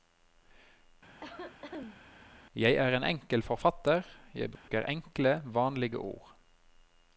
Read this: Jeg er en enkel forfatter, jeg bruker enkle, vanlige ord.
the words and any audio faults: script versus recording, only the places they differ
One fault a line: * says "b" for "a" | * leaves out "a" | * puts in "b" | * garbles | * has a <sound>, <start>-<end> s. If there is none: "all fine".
* has a cough, 1.2-2.0 s
* has a dropout, 4.6-4.7 s